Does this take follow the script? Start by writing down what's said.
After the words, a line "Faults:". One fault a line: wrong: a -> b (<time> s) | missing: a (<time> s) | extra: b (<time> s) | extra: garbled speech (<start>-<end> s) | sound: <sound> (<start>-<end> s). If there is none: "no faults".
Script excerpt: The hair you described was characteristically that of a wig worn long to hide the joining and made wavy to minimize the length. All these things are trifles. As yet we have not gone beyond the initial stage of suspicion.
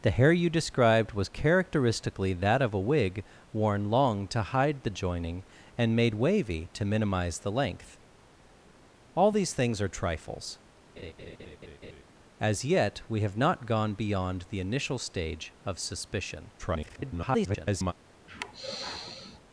The hair you described was characteristically that of a wig worn long to hide the joining and made wavy to minimize the length. All these things are trifles. As yet we have not gone beyond the initial stage of suspicion. [garbled]
Faults:
sound: laugh (11.0-12.0 s)
extra: garbled speech (16.6-17.9 s)
sound: sigh (18.3-19.4 s)